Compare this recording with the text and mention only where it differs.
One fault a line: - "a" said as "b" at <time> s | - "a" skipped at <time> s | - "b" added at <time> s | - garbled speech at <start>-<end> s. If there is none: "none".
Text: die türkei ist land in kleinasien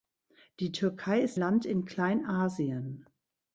none